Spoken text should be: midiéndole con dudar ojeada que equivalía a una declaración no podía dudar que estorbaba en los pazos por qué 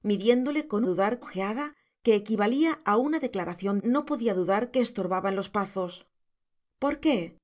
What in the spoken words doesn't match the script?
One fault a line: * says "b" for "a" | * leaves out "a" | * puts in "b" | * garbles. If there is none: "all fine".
all fine